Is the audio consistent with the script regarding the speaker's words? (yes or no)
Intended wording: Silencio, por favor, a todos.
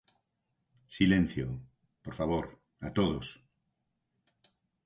yes